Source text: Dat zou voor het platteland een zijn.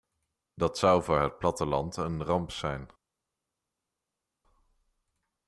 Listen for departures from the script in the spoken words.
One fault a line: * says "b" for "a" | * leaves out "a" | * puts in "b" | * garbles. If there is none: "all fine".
* puts in "ramp"